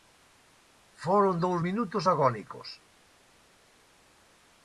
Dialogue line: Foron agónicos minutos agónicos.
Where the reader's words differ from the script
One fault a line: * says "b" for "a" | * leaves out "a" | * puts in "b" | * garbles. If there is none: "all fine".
* says "dous" for "agónicos"